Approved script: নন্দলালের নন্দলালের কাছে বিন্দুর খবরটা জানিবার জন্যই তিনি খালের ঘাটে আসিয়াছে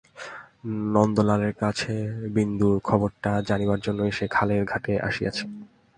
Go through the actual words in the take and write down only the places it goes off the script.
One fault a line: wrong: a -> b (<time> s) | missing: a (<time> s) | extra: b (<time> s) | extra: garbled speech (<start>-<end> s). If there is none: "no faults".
missing: নন্দলালের (1.5 s)
wrong: তিনি -> সে (4.1 s)